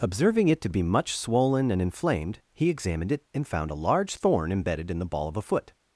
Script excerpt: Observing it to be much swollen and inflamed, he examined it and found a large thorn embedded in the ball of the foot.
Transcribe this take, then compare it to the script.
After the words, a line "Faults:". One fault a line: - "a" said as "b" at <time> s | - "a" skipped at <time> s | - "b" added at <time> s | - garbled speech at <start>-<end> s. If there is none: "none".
Observing it to be much swollen and inflamed, he examined it and found a large thorn embedded in the ball of a foot.
Faults:
- "the" said as "a" at 5.4 s